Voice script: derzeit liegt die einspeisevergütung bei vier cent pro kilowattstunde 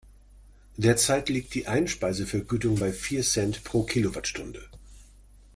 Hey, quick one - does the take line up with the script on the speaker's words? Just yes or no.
yes